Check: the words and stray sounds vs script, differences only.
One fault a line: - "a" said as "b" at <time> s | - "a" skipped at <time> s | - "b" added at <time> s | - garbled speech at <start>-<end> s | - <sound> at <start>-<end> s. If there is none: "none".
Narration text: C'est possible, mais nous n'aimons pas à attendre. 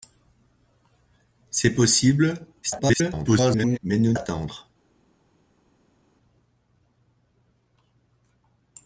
- garbled speech at 2.6-3.8 s
- "n'aimons pas à" skipped at 4.1 s